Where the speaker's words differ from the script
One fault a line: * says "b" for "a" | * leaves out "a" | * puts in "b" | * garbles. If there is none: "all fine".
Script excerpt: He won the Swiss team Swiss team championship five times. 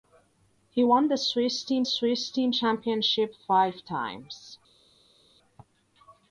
all fine